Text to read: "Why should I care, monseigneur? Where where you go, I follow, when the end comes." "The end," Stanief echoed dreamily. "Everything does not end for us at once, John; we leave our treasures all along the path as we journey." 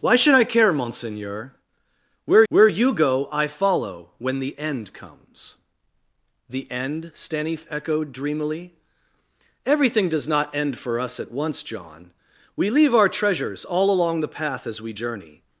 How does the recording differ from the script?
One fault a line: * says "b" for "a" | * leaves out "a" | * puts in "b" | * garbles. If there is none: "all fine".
all fine